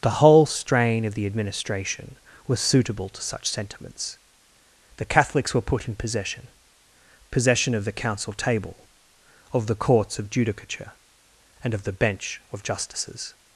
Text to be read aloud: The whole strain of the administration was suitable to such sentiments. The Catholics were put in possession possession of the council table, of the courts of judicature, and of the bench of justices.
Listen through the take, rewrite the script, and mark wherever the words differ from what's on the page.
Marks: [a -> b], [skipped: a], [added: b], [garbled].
The whole strain of the administration was suitable to such sentiments. The Catholics were put in possession possession of the council table, of the courts of judicature, and of the bench of justices.